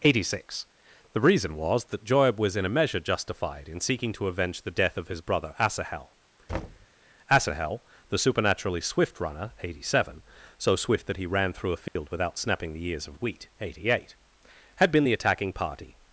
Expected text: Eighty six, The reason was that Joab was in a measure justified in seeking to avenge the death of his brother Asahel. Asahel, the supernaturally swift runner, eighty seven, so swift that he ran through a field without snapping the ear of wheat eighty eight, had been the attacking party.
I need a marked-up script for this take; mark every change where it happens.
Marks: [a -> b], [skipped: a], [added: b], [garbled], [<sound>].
Eighty six, The reason was that Joab was in a measure justified in seeking to avenge the death of his brother Asahel. [thud] Asahel, the supernaturally swift runner, eighty seven, so swift that he ran through a field [dropout] without snapping the [ear -> ears] of wheat eighty eight, had been the attacking party.